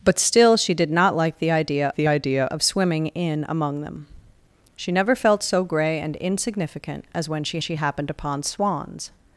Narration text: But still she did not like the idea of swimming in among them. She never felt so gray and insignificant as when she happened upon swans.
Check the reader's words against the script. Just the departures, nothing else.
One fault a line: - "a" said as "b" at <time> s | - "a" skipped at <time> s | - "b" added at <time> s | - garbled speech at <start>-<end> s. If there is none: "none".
- "the idea" added at 2.0 s
- "she" added at 7.6 s